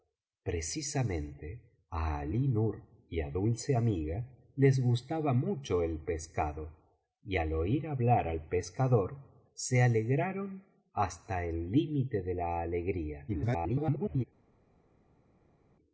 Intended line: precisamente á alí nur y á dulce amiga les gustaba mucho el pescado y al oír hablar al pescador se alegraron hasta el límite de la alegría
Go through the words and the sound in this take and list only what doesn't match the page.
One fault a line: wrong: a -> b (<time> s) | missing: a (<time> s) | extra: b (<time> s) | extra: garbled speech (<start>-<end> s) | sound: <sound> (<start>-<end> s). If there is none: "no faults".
extra: garbled speech (13.3-14.2 s)